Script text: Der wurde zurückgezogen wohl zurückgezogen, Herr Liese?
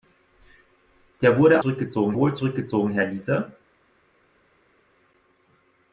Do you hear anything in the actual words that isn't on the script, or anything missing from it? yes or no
no